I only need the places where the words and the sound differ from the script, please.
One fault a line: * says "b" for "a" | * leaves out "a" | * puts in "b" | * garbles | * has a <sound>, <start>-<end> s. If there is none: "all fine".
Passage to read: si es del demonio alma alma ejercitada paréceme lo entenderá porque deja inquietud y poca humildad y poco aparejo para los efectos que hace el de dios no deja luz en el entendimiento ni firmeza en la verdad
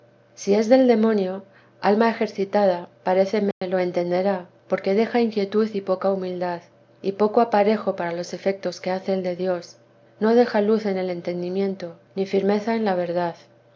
* leaves out "alma"
* has a dropout, 3.5-3.6 s